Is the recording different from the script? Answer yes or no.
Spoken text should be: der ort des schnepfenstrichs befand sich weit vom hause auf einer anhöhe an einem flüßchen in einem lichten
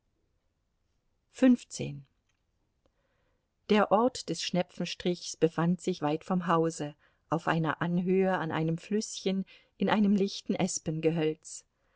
no